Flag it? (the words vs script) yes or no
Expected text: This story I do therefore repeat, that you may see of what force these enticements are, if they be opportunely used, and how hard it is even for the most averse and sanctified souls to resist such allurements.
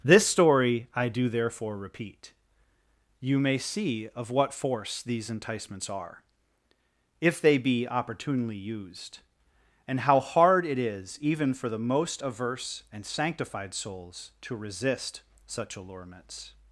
yes